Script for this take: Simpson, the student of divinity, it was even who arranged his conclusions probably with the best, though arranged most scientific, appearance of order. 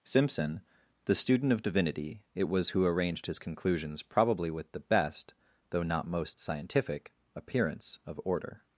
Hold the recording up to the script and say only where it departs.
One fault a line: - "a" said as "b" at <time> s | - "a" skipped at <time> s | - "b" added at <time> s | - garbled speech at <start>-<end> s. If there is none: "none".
- "even" skipped at 2.7 s
- "arranged" said as "not" at 5.8 s